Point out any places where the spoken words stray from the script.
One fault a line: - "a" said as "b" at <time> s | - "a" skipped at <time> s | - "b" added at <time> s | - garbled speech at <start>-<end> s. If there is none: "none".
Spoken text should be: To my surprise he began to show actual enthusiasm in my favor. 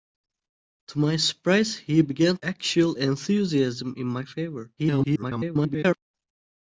- "to show" skipped at 2.4 s
- garbled speech at 4.8-6.0 s